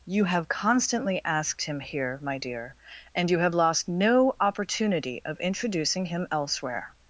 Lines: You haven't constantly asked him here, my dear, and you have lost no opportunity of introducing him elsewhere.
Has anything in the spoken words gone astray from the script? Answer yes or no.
yes